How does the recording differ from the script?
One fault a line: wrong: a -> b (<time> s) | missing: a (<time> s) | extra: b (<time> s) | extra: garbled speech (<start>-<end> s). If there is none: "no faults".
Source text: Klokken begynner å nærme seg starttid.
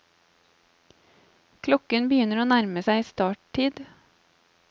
no faults